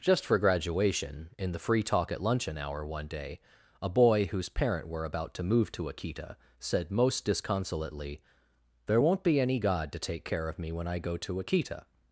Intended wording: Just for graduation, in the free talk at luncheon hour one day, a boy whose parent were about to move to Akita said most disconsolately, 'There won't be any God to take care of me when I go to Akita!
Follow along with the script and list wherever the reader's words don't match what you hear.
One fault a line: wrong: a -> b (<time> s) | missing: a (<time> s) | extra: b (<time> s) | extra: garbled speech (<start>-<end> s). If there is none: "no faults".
no faults